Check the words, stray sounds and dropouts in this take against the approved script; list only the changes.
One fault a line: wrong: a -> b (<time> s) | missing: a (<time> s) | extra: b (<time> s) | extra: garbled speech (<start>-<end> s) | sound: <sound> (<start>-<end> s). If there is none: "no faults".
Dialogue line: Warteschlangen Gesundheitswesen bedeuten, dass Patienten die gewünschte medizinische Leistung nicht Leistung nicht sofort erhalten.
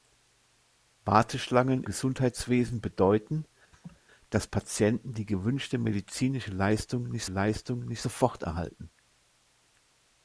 sound: laugh (3.7-4.0 s)